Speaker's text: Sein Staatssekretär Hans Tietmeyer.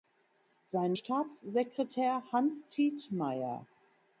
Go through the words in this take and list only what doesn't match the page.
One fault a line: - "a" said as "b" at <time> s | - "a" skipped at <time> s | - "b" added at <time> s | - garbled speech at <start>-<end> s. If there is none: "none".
none